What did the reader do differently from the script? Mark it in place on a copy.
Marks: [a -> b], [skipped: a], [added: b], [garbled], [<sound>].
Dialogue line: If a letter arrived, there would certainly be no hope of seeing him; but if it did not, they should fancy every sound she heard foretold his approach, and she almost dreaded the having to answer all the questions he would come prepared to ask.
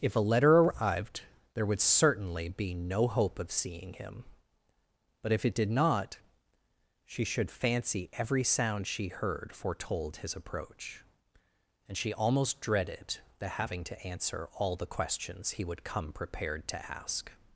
If a letter arrived, there would certainly be no hope of seeing him; but if it did not, [they -> she] should fancy every sound she heard foretold his approach, and she almost dreaded the having to answer all the questions he would come prepared to ask.